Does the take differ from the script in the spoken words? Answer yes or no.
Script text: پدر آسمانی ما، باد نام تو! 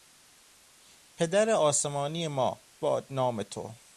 no